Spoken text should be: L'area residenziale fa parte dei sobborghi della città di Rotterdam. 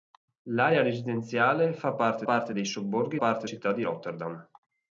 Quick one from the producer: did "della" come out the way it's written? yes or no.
no